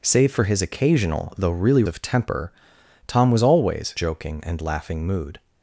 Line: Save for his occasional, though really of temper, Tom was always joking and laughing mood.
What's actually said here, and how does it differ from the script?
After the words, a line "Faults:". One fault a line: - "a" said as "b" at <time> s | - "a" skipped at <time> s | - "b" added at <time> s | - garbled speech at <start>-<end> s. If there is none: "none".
Save for his occasional, though really of temper, Tom was always joking and laughing mood.
Faults:
none